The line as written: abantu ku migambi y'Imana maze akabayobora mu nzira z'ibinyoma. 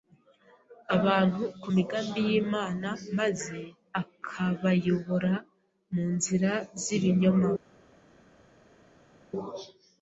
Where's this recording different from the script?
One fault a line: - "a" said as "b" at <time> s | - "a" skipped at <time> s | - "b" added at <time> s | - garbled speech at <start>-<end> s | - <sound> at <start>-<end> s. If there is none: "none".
none